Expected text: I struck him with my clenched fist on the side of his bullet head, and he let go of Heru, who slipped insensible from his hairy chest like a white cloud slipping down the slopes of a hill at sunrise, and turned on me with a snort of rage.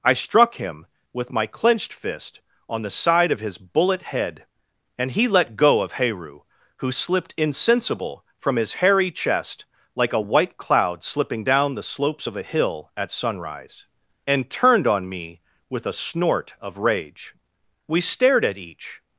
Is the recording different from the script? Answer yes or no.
yes